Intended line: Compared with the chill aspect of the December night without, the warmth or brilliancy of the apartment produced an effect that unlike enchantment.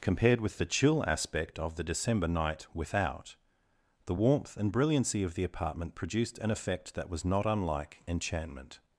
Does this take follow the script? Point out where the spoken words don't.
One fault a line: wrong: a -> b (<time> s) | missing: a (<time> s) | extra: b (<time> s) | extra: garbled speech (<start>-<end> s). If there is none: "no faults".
wrong: or -> and (4.6 s)
extra: was not (7.1 s)